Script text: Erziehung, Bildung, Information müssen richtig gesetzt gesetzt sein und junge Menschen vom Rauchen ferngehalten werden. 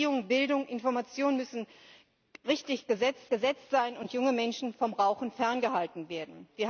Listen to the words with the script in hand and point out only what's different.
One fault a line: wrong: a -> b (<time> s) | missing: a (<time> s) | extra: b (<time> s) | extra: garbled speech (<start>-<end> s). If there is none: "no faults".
no faults